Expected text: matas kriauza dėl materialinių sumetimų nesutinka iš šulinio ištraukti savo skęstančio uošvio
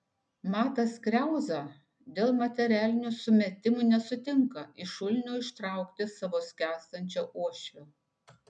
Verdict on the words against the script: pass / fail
pass